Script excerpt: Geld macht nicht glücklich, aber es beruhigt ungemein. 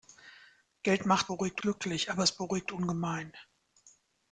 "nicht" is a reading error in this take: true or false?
true